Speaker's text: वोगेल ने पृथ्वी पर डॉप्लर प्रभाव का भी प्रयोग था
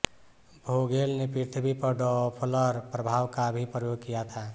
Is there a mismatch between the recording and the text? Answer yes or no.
yes